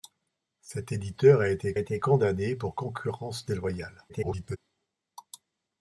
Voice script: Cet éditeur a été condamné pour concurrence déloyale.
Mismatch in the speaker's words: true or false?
true